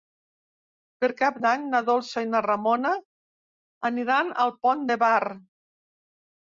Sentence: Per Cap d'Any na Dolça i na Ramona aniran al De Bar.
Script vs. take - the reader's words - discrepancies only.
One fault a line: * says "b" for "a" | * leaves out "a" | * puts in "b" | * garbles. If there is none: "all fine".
* puts in "Pont"